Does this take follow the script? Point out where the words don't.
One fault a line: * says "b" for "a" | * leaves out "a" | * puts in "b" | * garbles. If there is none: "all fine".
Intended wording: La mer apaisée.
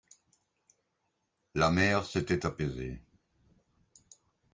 * puts in "s'était"